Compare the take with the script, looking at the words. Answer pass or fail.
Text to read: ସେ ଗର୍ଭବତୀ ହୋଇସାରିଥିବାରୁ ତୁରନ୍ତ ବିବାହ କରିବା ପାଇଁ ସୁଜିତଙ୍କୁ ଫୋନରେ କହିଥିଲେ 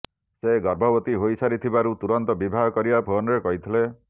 fail